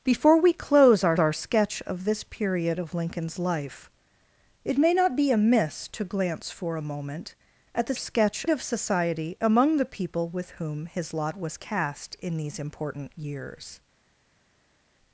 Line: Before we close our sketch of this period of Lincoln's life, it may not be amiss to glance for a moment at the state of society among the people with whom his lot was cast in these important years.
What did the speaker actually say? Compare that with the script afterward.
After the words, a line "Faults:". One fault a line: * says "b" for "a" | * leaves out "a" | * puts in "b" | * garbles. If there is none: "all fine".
Before we close our our sketch of this period of Lincoln's life, it may not be amiss to glance for a moment at the sketch of society among the people with whom his lot was cast in these important years.
Faults:
* puts in "our"
* says "sketch" for "state"